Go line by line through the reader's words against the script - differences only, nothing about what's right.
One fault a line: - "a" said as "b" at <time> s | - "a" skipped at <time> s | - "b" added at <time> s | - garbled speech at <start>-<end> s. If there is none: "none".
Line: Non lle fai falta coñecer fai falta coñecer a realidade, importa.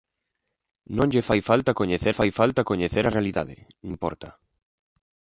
none